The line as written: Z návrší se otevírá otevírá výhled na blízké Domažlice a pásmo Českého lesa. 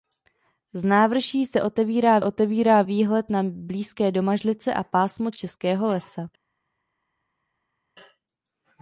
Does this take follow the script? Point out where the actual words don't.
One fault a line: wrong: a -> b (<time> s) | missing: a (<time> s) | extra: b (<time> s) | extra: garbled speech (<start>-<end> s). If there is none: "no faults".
no faults